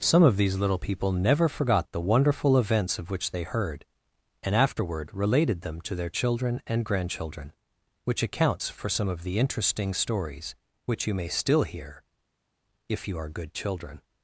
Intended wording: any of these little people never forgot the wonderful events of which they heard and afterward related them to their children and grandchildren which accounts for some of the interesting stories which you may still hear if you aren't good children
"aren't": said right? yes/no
no